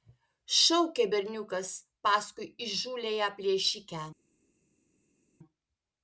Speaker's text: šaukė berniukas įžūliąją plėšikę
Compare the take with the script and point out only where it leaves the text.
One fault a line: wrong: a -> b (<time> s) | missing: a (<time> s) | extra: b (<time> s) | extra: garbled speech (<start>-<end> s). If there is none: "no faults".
extra: paskui (2.1 s)